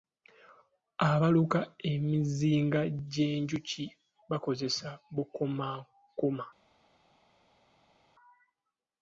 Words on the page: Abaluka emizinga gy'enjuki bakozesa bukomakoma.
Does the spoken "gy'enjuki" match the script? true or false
true